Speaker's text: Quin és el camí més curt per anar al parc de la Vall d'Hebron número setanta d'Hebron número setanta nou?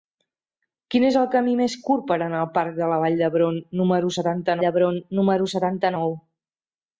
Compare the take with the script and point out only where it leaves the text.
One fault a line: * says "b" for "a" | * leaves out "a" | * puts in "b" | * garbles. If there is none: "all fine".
all fine